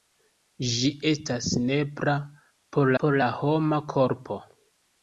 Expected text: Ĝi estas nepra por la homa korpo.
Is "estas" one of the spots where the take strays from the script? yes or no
no